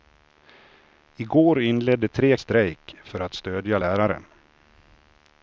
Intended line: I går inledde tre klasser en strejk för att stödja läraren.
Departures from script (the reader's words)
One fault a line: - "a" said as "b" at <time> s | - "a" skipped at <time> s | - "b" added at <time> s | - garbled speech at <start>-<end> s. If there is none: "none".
- "klasser en" skipped at 2.4 s